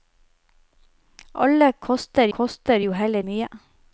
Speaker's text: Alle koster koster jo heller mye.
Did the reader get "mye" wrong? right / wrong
right